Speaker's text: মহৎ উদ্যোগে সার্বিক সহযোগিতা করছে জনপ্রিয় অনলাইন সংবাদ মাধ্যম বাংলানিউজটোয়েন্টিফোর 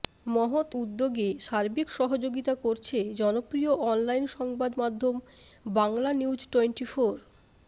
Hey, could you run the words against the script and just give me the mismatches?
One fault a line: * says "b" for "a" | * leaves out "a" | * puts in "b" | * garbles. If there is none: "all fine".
all fine